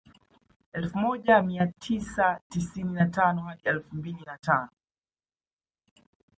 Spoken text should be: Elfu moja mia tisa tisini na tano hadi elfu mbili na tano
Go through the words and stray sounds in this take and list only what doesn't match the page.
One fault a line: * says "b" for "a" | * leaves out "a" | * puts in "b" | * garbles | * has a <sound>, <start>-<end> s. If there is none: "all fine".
all fine